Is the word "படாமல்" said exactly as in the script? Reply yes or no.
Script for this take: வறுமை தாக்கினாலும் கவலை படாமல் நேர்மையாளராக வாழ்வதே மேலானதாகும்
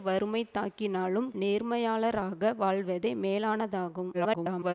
no